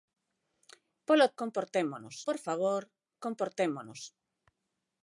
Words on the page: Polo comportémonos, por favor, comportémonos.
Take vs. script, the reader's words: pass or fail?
pass